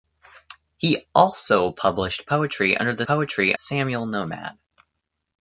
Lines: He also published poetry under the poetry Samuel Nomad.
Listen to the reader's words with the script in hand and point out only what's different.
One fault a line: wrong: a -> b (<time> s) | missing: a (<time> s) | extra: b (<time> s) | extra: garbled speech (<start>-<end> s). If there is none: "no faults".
no faults